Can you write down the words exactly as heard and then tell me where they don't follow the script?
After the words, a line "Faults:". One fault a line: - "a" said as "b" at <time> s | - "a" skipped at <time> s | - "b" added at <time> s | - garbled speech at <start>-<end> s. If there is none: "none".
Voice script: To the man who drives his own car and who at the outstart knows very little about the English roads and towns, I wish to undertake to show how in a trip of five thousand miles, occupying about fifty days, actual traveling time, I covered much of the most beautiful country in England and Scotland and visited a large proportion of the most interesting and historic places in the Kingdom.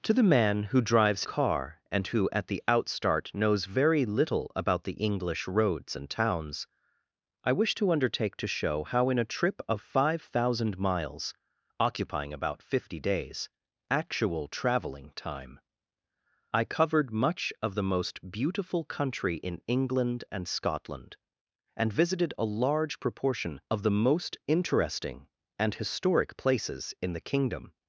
To the man who drives car and who at the outstart knows very little about the English roads and towns, I wish to undertake to show how in a trip of five thousand miles, occupying about fifty days, actual traveling time, I covered much of the most beautiful country in England and Scotland and visited a large proportion of the most interesting and historic places in the Kingdom.
Faults:
- "his own" skipped at 1.2 s